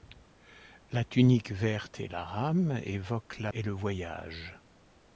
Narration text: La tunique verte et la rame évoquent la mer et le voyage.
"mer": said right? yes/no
no